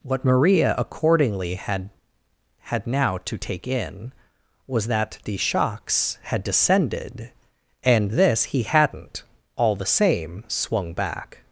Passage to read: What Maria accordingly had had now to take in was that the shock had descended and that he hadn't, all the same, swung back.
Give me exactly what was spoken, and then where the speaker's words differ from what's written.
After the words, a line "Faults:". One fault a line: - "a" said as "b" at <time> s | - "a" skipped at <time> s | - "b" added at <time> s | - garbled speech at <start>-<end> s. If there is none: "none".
What Maria accordingly had had now to take in was that the shocks had descended and this he hadn't, all the same, swung back.
Faults:
- "shock" said as "shocks" at 5.4 s
- "that" said as "this" at 8.1 s